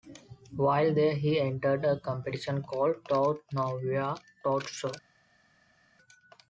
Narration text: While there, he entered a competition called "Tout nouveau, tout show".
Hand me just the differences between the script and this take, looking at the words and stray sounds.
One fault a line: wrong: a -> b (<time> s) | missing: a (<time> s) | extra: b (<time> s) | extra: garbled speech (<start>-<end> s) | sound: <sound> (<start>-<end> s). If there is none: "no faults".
no faults